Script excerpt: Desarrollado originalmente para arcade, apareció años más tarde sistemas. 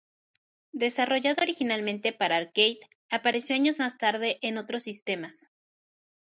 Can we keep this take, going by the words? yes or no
no